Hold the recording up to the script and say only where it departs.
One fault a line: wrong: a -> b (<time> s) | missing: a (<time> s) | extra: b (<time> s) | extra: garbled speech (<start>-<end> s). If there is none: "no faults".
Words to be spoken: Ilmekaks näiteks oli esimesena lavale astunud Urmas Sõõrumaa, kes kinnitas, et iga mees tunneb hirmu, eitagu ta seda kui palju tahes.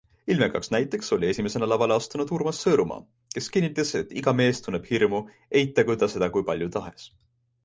no faults